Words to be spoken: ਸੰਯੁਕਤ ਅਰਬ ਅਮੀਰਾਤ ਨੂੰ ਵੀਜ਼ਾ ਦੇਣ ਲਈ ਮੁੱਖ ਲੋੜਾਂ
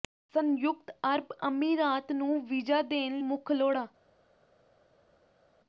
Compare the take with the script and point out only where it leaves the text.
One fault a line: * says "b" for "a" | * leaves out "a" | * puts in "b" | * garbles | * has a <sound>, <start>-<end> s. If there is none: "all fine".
* leaves out "ਲਈ"